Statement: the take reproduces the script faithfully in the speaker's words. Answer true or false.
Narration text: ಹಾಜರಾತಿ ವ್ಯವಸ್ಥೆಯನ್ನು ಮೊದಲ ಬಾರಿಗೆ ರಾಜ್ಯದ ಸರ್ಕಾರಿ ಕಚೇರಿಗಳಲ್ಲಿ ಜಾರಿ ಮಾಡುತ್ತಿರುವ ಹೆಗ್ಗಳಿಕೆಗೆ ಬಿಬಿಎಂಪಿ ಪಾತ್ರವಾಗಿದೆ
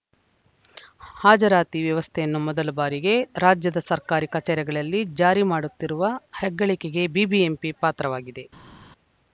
true